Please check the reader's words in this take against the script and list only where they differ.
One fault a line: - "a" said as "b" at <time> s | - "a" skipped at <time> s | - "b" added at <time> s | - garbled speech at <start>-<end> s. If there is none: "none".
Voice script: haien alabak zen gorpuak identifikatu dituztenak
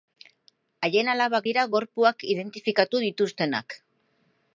- "zen" said as "dira" at 1.5 s